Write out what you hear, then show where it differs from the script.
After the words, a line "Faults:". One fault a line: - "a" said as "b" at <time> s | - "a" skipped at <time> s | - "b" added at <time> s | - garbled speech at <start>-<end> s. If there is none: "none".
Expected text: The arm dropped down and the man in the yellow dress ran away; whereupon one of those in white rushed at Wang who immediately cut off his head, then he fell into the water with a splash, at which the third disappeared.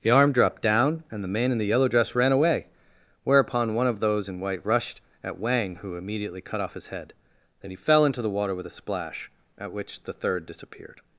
The arm dropped down and the man in the yellow dress ran away; whereupon one of those in white rushed at Wang who immediately cut off his head, then he fell into the water with a splash, at which the third disappeared.
Faults:
none